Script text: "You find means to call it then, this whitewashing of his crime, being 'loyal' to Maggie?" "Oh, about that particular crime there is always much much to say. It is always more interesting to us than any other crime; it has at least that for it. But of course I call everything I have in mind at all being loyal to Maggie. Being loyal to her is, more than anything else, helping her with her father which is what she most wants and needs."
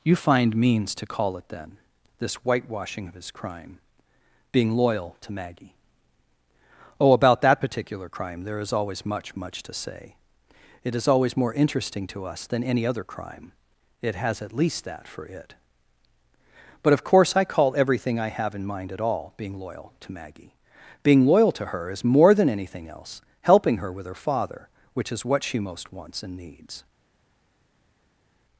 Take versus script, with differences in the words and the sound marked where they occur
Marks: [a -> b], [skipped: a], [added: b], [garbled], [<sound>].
"You find means to call it then, this whitewashing of his crime, being 'loyal' to Maggie?" "Oh, about that particular crime there is always much much to say. It is always more interesting to us than any other crime; it has at least that for it. But of course I call everything I have in mind at all being loyal to Maggie. Being loyal to her is, more than anything else, helping her with her father which is what she most wants and needs."